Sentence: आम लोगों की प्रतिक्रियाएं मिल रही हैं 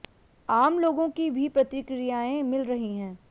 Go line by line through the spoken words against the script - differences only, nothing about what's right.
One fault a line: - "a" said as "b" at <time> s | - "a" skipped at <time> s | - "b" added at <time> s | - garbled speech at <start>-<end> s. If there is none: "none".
- "भी" added at 1.3 s